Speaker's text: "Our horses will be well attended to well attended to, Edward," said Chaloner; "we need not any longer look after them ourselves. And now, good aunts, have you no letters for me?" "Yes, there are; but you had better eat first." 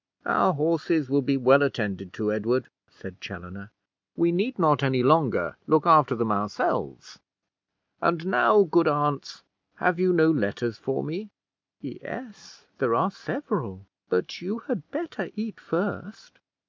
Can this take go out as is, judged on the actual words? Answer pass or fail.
fail